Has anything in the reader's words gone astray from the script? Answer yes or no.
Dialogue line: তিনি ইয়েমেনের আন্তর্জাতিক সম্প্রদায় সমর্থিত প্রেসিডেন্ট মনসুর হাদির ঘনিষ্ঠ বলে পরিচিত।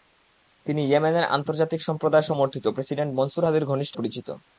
yes